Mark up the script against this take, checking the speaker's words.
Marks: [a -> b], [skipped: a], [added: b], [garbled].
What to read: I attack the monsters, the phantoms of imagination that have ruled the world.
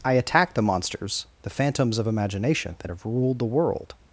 I attack the monsters, the phantoms of imagination that have ruled the world.